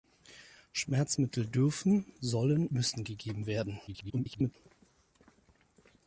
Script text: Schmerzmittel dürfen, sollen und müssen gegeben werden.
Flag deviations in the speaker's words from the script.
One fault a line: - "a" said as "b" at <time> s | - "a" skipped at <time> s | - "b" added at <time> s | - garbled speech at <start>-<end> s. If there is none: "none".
- "und" skipped at 2.7 s
- garbled speech at 3.9-4.6 s